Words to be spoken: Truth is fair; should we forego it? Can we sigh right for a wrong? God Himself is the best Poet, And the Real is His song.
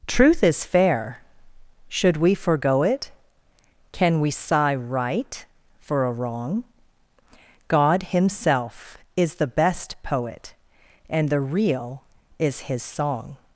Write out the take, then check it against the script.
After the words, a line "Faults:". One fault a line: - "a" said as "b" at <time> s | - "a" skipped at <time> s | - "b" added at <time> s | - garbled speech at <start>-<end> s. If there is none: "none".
Truth is fair; should we forego it? Can we sigh right for a wrong? God Himself is the best Poet, And the Real is His song.
Faults:
none